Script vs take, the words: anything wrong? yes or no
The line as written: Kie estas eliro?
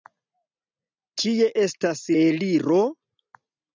no